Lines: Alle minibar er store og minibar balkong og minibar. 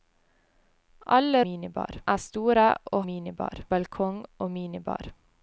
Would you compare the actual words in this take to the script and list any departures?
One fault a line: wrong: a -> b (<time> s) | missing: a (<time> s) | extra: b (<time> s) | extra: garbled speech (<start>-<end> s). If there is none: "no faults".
no faults